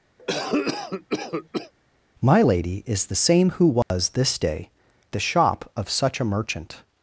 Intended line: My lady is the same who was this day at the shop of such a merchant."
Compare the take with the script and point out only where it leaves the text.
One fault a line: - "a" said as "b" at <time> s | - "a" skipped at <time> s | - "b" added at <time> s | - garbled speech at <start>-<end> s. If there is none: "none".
- "at" skipped at 4.7 s